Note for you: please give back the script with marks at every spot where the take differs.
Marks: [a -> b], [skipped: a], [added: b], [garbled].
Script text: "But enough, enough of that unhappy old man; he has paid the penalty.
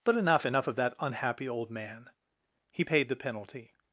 "But enough, enough of that unhappy old man; he [skipped: has] paid the penalty.